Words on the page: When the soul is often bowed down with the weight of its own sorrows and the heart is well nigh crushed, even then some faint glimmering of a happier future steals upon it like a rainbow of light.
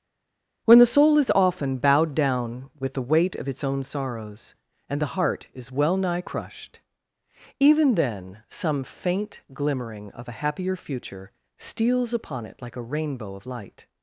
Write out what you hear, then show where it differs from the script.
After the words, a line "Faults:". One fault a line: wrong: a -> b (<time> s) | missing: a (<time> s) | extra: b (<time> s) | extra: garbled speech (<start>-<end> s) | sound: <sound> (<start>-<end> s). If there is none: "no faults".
When the soul is often bowed down with the weight of its own sorrows and the heart is well nigh crushed, even then some faint glimmering of a happier future steals upon it like a rainbow of light.
Faults:
no faults